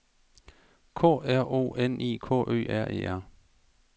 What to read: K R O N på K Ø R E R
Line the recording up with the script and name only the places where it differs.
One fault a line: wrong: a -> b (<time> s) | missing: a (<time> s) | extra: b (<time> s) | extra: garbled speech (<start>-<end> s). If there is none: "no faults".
wrong: på -> I (2.0 s)